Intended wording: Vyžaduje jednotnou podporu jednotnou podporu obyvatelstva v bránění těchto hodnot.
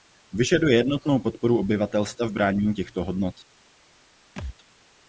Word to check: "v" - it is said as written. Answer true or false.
true